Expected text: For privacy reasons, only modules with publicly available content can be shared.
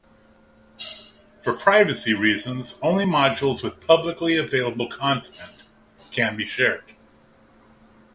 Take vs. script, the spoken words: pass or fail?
pass